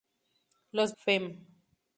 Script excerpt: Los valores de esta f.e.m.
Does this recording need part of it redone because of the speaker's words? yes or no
yes